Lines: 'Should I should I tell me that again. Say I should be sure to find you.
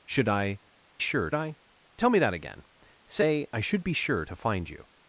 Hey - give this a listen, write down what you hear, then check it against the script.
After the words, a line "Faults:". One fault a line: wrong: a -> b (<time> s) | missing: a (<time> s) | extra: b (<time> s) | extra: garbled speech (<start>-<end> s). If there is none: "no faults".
'Should I sure I tell me that again. Say I should be sure to find you.
Faults:
wrong: should -> sure (1.0 s)